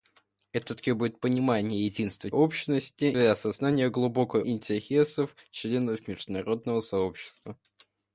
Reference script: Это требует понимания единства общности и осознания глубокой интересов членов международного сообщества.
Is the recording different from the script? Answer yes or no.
no